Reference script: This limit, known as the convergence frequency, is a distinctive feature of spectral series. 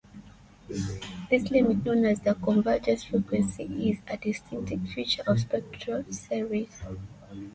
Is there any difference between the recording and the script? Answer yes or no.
no